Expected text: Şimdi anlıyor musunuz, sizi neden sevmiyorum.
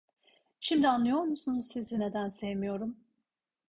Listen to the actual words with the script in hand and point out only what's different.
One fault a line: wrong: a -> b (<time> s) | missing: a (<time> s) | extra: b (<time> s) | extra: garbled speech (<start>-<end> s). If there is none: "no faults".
no faults